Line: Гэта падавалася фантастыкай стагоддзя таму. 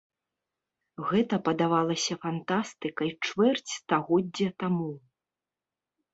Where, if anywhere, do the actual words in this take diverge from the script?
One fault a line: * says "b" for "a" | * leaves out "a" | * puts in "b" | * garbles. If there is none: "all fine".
* puts in "чвэрць"